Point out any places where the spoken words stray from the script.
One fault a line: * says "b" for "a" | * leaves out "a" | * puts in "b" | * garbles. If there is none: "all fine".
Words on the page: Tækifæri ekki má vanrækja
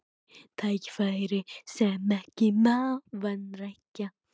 * puts in "sem"